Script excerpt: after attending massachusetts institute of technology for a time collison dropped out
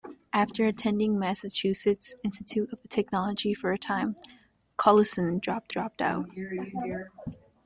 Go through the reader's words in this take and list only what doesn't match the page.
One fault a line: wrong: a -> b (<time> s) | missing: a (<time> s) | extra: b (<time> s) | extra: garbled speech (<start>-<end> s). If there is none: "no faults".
extra: dropped (5.7 s)